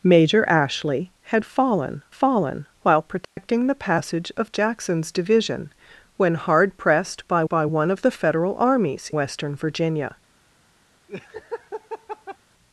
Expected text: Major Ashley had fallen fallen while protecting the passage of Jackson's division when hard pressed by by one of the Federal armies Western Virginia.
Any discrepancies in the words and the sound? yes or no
yes